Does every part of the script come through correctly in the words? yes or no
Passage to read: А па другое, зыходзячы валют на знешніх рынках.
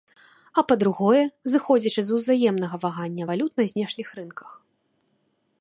no